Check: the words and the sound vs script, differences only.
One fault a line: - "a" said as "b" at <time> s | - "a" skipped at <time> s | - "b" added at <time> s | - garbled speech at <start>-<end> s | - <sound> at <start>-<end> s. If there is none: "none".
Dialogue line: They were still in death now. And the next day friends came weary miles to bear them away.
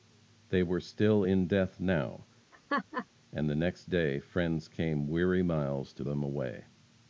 - laugh at 2.5-3.1 s
- "bear" skipped at 6.0 s